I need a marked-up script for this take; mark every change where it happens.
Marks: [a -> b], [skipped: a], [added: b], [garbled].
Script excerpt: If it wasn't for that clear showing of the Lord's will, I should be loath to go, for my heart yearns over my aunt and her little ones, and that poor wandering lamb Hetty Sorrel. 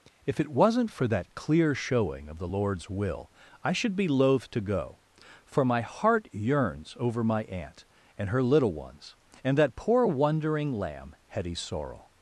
If it wasn't for that clear showing of the Lord's will, I should be loath to go, for my heart yearns over my aunt and her little ones, and that poor wandering lamb Hetty Sorrel.